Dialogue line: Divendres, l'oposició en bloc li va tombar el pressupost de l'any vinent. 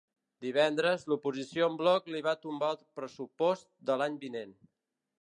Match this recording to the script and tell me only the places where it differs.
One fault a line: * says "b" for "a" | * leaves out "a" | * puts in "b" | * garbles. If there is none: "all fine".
all fine